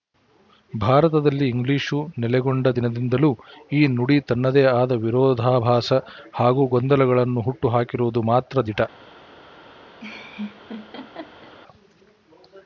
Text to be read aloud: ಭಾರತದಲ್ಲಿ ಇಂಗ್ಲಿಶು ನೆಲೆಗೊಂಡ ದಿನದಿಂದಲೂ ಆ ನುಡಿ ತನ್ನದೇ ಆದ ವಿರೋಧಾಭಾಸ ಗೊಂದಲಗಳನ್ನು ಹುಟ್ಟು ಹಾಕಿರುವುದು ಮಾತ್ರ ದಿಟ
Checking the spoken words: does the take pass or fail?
fail